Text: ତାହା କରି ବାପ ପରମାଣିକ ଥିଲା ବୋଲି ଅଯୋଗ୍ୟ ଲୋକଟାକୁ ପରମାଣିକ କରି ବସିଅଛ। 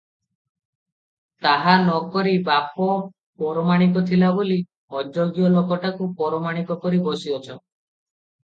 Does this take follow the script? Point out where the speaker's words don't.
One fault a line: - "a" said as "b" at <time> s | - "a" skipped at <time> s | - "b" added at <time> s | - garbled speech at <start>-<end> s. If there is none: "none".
- "ନ" added at 1.8 s